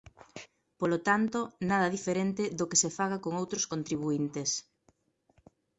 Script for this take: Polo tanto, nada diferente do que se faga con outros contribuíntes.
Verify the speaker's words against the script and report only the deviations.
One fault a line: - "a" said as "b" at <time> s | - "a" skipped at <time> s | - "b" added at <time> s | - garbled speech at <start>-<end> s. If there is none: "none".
none